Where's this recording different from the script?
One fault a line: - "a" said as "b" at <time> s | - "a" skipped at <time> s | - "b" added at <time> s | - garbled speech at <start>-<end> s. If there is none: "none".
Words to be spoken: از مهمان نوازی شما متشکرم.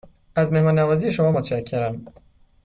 none